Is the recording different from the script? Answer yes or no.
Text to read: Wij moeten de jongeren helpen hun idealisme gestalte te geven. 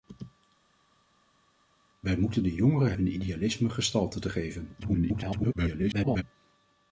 yes